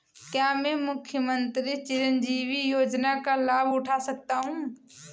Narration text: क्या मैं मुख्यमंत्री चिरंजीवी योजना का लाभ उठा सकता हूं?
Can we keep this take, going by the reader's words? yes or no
yes